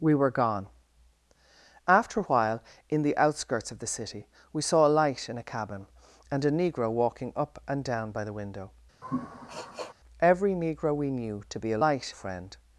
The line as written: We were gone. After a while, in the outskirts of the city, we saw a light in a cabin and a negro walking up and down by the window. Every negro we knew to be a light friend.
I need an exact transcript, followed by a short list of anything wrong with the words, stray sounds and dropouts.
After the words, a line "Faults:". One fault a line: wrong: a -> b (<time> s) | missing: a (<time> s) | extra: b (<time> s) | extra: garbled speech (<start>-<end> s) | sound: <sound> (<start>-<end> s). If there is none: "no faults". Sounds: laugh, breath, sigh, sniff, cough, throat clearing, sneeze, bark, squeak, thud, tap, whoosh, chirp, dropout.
We were gone. After a while, in the outskirts of the city, we saw a light in a cabin and a negro walking up and down by the window. Every negro we knew to be a light friend.
Faults:
sound: sniff (9.0-9.9 s)